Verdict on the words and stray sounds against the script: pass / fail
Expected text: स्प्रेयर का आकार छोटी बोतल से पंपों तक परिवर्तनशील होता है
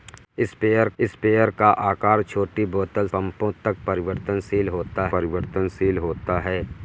fail